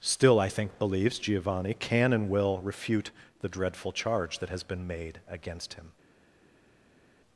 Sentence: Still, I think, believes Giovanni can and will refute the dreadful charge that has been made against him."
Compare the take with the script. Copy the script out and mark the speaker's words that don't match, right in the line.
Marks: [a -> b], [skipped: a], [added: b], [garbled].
Still, I think, believes Giovanni can and will refute the dreadful charge that has been made against him."